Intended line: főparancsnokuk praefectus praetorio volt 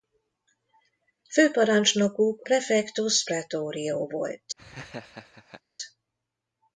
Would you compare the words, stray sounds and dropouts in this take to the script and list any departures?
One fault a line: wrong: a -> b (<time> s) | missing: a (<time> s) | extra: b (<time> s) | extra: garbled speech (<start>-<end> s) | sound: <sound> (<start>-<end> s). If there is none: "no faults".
sound: laugh (4.6-5.6 s)